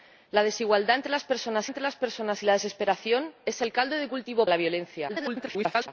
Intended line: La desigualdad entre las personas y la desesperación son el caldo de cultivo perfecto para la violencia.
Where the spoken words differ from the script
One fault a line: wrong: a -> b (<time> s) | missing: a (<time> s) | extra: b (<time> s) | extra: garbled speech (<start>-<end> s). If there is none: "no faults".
extra: entre las personas (1.7 s)
missing: perfecto para (4.5 s)
extra: garbled speech (5.1-5.9 s)